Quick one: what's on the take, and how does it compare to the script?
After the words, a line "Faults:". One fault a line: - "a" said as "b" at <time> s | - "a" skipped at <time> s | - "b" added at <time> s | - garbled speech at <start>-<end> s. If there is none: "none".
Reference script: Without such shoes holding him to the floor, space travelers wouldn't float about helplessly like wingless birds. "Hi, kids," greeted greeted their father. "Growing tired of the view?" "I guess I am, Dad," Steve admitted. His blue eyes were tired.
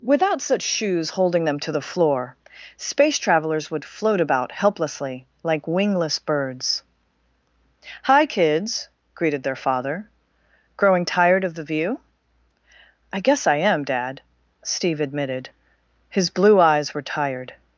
Without such shoes holding them to the floor, space travelers would float about helplessly like wingless birds. "Hi, kids," greeted their father. "Growing tired of the view?" "I guess I am, Dad," Steve admitted. His blue eyes were tired.
Faults:
- "him" said as "them" at 1.4 s
- "wouldn't" said as "would" at 3.7 s
- "greeted" skipped at 9.4 s